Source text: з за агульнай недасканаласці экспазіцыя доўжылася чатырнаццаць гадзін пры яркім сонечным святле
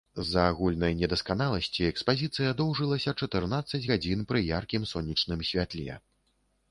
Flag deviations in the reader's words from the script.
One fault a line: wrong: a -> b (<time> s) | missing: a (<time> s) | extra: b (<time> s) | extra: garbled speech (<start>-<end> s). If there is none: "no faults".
no faults